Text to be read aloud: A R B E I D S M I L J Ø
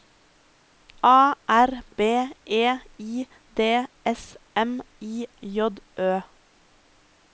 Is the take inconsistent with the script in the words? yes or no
yes